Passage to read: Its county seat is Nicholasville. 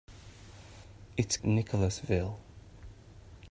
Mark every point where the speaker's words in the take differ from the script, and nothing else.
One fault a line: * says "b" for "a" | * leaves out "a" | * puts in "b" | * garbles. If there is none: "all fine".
* leaves out "county seat is"